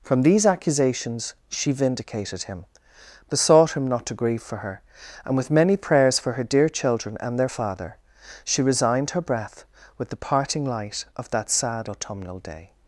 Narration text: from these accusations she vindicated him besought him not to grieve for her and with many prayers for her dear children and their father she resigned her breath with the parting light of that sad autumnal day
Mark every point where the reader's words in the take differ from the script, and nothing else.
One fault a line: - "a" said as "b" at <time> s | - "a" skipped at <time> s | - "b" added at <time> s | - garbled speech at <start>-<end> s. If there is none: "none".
none